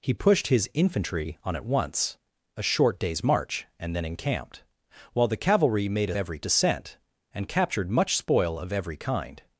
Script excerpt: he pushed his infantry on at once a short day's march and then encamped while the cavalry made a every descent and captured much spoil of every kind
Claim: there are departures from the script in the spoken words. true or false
false